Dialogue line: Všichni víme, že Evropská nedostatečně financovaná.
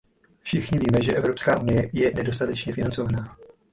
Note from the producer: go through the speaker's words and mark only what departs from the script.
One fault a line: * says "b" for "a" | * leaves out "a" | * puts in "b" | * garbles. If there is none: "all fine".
* puts in "unie je"